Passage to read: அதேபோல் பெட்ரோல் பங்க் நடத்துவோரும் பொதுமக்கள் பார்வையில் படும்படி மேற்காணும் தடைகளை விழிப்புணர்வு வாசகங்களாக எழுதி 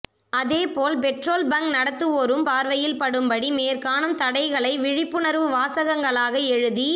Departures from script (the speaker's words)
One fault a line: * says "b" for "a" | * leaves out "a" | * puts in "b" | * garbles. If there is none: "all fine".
* leaves out "பொதுமக்கள்"